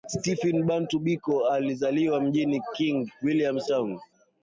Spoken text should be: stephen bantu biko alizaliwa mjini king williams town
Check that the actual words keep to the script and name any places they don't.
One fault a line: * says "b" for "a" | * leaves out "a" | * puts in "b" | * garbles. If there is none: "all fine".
all fine